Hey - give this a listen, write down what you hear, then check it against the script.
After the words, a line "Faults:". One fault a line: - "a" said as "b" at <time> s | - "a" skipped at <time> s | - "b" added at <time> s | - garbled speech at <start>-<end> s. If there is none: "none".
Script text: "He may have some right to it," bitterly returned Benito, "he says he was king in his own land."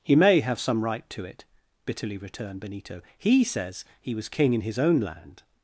"He may have some right to it," bitterly returned Benito, "he says he was king in his own land."
Faults:
none